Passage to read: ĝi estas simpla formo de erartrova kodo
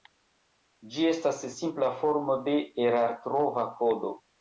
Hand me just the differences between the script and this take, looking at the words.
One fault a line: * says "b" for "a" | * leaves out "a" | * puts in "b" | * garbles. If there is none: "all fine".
all fine